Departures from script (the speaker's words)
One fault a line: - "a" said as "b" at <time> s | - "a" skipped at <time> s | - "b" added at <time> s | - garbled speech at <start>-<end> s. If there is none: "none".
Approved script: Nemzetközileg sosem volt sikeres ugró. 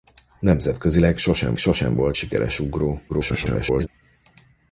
- "sosem" added at 1.6 s
- garbled speech at 3.1-3.9 s